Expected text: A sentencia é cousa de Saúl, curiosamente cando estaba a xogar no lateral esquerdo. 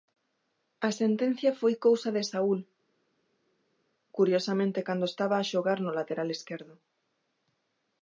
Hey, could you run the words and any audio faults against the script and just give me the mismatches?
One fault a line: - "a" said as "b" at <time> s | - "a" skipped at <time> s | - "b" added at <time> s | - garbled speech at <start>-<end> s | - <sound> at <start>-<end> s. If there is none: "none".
- "é" said as "foi" at 1.6 s